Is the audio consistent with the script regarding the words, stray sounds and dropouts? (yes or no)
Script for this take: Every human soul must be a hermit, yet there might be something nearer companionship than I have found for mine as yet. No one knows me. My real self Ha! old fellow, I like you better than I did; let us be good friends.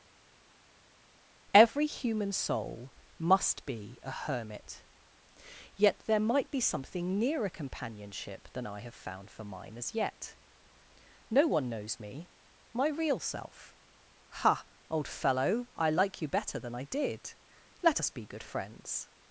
yes